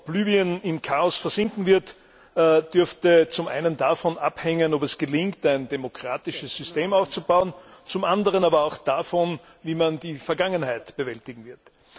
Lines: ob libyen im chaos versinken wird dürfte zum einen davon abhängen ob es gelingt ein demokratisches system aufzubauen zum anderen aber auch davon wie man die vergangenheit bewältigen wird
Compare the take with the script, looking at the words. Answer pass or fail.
pass